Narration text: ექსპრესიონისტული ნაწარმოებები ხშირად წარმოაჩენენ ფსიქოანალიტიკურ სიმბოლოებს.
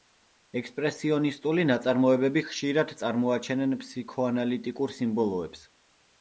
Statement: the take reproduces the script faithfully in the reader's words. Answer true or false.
true